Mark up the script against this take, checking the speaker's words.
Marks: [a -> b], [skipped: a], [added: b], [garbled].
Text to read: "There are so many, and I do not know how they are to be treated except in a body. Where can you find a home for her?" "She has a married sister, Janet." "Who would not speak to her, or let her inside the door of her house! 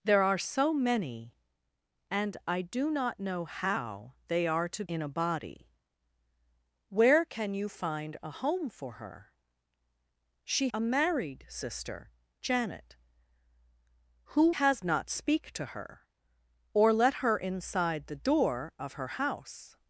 "There are so many, and I do not know how they are to [skipped: be treated except] in a body. Where can you find a home for her?" "She [skipped: has] a married sister, Janet." "Who [would -> has] not speak to her, or let her inside the door of her house!